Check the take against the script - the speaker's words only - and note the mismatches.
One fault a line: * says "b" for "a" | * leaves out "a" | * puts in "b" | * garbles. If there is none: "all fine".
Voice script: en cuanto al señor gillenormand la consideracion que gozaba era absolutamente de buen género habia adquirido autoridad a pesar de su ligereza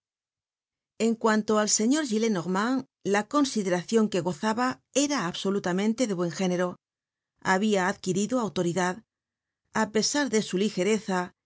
all fine